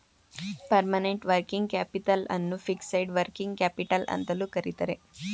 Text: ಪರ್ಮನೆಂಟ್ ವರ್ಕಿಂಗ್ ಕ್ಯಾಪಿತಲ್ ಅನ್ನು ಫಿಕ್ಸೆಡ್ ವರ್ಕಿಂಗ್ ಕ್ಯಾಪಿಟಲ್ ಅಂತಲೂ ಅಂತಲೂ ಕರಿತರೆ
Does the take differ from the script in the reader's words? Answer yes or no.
yes